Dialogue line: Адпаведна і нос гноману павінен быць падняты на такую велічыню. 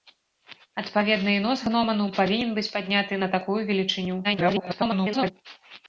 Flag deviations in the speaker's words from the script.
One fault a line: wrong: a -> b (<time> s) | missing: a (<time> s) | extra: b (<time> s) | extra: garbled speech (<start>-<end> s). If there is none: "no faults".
extra: garbled speech (4.2-5.3 s)